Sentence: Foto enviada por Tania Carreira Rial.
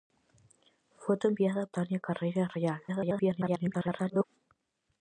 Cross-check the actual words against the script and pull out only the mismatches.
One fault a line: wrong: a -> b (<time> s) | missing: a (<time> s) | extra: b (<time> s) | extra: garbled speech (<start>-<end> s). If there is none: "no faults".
missing: por (1.7 s)
extra: garbled speech (2.9-4.2 s)